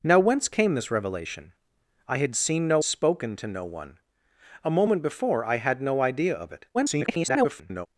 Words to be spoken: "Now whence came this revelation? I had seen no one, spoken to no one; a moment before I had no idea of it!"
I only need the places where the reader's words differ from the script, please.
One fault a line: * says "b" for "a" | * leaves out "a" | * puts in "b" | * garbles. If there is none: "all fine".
* leaves out "one"
* garbles